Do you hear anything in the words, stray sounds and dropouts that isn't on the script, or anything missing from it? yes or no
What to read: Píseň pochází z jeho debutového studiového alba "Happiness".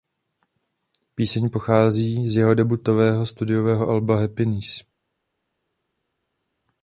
no